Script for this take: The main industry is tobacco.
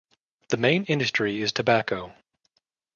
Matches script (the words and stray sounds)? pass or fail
pass